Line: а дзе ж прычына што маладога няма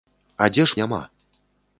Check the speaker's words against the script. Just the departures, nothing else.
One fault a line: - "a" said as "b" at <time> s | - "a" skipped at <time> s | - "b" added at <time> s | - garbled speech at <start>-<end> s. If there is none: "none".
- "прычына што маладога" skipped at 0.8 s